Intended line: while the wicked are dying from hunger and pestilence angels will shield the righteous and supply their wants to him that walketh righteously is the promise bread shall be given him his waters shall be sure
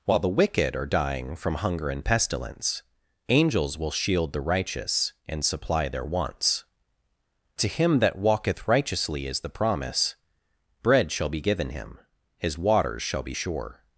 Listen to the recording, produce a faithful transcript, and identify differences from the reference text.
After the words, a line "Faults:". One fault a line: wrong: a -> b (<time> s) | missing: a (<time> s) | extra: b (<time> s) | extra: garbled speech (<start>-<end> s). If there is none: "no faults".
while the wicked are dying from hunger and pestilence angels will shield the righteous and supply their wants to him that walketh righteously is the promise bread shall be given him his waters shall be sure
Faults:
no faults